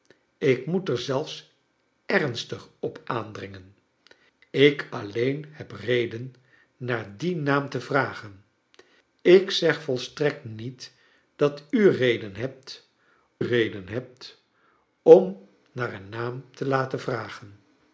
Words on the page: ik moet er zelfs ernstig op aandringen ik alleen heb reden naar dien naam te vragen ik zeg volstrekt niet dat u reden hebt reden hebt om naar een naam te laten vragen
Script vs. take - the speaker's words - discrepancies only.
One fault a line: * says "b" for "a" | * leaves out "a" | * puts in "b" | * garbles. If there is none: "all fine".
all fine